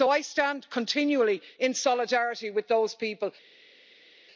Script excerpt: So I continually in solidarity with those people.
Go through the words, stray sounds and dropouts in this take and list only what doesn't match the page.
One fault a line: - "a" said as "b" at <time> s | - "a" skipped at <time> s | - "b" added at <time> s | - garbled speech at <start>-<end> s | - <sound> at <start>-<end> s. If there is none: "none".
- "stand" added at 0.2 s